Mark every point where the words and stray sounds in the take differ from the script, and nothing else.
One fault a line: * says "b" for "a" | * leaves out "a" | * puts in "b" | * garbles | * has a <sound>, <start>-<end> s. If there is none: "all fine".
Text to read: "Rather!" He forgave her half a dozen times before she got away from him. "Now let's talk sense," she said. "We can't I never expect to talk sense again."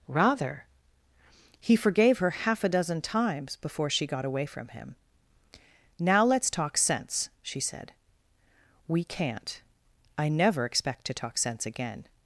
all fine